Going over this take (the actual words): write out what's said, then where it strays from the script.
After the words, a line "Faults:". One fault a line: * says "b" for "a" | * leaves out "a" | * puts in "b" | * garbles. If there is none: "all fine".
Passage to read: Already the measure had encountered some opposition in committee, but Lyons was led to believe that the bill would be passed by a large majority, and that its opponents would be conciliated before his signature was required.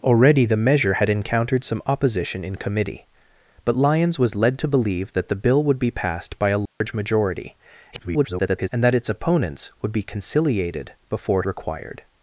Already the measure had encountered some opposition in committee, but Lyons was led to believe that the bill would be passed by a large majority, [garbled] and that its opponents would be conciliated before required.
Faults:
* garbles
* leaves out "his signature was"